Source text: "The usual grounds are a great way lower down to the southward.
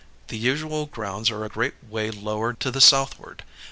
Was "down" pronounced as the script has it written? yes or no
no